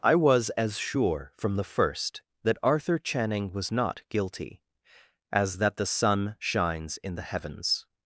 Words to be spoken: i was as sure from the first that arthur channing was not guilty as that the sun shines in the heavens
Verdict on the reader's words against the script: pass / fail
pass